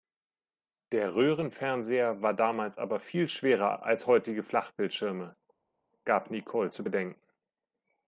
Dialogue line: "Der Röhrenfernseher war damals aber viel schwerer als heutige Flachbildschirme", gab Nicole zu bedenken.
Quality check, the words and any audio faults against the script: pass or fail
pass